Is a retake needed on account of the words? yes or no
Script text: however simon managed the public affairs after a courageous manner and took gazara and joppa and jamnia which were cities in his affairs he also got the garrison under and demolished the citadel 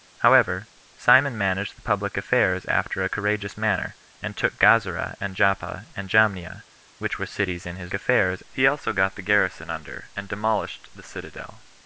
no